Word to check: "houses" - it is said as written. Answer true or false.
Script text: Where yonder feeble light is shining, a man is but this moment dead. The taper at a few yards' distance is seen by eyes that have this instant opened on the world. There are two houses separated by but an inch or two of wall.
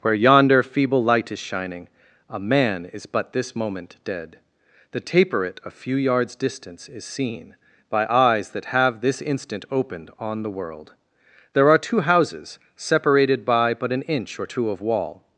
true